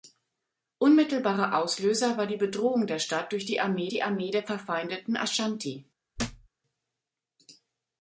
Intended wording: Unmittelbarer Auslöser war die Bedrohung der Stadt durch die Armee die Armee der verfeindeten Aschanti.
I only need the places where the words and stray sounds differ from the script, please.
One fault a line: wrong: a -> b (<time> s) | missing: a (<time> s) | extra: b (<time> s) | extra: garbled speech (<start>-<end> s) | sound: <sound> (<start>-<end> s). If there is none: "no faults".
sound: thud (6.2-6.5 s)